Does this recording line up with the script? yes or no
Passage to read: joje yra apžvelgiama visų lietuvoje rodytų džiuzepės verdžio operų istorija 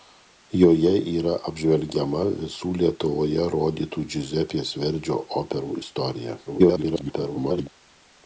no